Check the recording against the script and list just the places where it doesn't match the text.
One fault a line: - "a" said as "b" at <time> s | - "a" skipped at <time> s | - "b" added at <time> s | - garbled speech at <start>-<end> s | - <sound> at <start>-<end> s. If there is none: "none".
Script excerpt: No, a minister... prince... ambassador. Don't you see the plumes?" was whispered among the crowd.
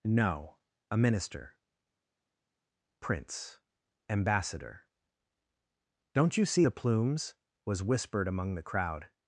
none